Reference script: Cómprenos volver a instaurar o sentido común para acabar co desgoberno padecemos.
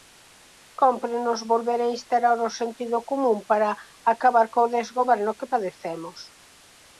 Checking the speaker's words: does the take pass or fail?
fail